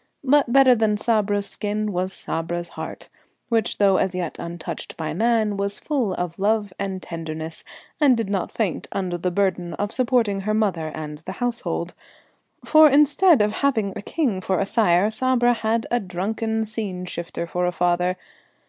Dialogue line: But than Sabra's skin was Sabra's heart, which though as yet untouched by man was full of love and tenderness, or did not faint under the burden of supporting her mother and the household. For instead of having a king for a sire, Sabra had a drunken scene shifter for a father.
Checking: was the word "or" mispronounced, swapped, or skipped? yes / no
yes